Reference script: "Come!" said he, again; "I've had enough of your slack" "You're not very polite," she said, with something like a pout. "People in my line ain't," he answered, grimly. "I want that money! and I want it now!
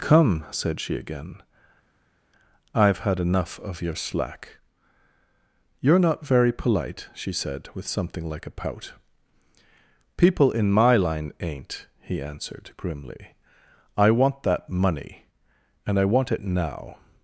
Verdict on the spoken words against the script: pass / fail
fail